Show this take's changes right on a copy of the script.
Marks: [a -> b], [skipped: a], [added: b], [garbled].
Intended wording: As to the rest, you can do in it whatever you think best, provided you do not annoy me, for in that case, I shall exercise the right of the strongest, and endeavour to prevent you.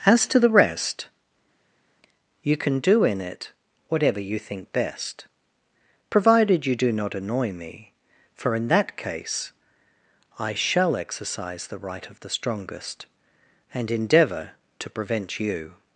As to the rest, you can do in it whatever you think best, provided you do not annoy me, for in that case, I shall exercise the right of the strongest, and endeavour to prevent you.